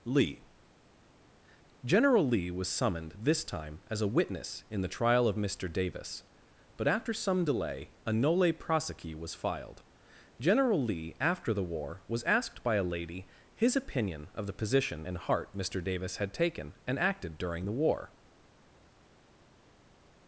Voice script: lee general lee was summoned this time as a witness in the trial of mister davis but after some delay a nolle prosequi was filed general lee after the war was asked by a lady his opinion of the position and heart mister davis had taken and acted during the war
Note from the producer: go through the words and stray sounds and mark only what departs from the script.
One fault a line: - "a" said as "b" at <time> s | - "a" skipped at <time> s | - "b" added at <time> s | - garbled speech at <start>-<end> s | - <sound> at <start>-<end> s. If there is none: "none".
none